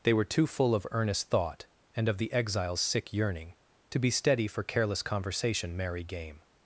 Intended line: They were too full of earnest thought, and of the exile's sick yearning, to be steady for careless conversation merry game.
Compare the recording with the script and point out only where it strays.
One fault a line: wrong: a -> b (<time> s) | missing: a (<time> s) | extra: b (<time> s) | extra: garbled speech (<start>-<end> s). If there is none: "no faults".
no faults